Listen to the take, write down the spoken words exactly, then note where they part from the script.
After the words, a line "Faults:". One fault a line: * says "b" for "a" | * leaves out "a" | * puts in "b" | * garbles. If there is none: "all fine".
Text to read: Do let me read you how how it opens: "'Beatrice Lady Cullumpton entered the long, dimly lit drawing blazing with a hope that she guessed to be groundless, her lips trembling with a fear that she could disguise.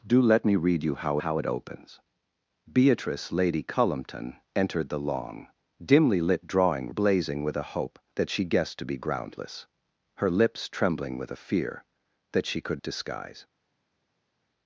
Do let me read you how how it opens: "'Beatrice Lady Cullumpton entered the long, dimly lit drawing blazing with a hope that she guessed to be groundless, her lips trembling with a fear that she could disguise.
Faults:
all fine